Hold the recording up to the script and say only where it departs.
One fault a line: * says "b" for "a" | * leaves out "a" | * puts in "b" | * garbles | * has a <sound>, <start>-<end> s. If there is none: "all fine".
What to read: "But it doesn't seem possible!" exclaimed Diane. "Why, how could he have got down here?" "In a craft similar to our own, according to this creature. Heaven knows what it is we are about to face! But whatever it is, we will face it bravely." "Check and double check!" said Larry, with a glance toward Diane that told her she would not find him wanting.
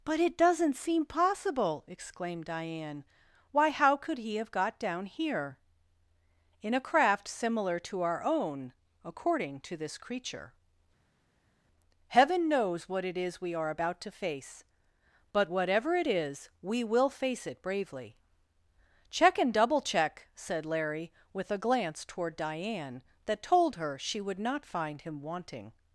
all fine